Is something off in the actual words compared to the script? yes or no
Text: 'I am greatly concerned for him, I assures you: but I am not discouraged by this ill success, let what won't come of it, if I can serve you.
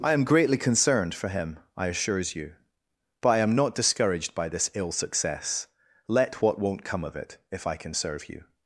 no